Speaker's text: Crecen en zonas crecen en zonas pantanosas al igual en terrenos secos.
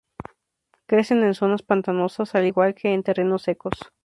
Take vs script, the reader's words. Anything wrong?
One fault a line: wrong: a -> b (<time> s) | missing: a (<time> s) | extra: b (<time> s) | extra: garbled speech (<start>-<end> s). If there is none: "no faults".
missing: crecen en zonas (1.6 s)
extra: que (2.7 s)